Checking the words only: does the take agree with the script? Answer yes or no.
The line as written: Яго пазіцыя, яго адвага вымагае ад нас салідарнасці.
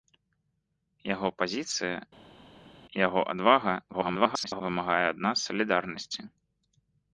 no